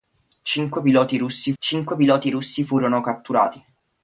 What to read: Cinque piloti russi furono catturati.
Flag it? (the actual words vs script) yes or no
yes